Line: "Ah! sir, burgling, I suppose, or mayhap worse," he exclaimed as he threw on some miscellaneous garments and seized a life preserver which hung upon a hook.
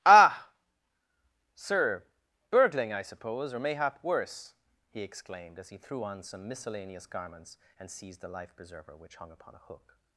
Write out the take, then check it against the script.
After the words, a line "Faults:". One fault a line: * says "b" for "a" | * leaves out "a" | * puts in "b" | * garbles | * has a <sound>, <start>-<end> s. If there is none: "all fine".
"Ah! sir, burgling, I suppose, or mayhap worse," he exclaimed as he threw on some miscellaneous garments and seized the life preserver which hung upon a hook.
Faults:
* says "the" for "a"